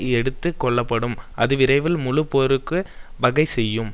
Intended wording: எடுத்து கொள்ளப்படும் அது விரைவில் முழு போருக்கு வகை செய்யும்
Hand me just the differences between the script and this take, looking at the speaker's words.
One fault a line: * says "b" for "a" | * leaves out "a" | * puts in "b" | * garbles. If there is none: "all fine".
all fine